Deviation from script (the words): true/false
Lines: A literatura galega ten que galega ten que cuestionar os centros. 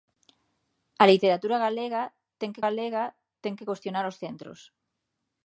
false